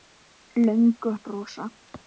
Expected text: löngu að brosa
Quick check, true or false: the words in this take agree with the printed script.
true